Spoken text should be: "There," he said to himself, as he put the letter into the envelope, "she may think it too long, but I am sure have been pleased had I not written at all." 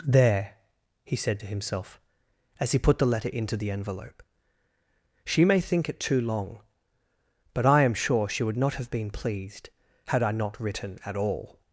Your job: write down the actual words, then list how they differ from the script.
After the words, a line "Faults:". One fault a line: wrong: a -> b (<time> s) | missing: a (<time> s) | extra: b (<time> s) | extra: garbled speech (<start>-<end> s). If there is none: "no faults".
"There," he said to himself, as he put the letter into the envelope, "she may think it too long, but I am sure she would not have been pleased had I not written at all."
Faults:
extra: she would not (8.3 s)